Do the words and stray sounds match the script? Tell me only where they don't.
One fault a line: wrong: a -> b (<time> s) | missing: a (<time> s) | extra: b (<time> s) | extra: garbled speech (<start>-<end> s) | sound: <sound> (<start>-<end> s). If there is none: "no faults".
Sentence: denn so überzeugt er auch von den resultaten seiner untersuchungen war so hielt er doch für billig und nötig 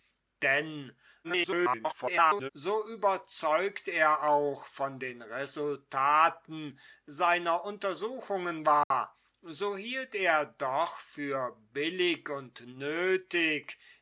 extra: garbled speech (1.2-2.5 s)
sound: dropout (8.8-8.9 s)